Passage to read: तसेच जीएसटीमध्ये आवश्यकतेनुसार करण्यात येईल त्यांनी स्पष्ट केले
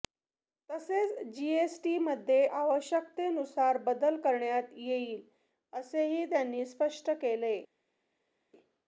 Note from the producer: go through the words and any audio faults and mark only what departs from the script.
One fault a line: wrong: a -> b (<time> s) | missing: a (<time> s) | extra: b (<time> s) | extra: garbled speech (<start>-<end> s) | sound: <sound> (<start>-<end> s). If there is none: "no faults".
extra: बदल (3.8 s)
extra: असेही (5.7 s)